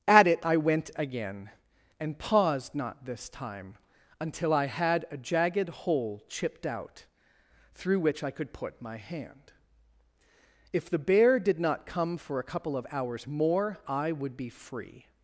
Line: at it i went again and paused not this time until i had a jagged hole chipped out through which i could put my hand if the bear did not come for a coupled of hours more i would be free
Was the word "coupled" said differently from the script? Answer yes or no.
yes